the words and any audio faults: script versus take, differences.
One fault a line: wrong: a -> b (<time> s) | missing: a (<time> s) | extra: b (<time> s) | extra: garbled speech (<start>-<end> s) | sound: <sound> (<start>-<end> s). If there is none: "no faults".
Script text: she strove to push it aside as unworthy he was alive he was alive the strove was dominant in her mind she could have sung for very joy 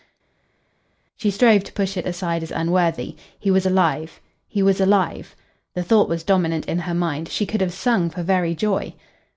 wrong: strove -> thought (5.8 s)